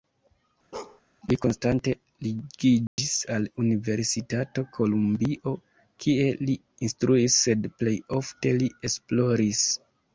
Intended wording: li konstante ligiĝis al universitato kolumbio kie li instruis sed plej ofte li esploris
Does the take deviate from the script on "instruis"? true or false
false